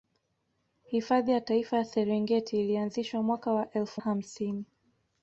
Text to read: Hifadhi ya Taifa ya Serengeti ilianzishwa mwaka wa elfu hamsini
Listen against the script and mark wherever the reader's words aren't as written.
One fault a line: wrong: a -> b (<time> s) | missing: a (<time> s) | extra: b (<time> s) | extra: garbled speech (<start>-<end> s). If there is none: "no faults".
no faults